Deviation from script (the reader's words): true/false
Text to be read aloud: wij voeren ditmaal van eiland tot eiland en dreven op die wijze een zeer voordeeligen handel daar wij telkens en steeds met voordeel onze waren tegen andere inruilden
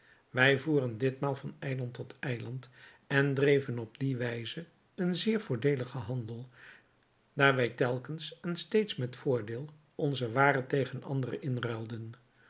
false